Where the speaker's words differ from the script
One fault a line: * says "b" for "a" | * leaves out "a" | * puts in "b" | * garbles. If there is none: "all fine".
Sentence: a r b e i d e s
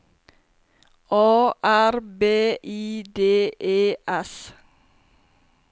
* leaves out "e"